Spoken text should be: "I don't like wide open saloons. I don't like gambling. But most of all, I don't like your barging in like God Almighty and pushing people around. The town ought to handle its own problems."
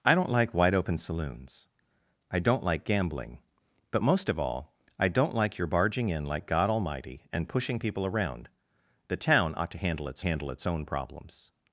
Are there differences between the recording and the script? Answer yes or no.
yes